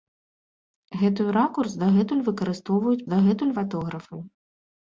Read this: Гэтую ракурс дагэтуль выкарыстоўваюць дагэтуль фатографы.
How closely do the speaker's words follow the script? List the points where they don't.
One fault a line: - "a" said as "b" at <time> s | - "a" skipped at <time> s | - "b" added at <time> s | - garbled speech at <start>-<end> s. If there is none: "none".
none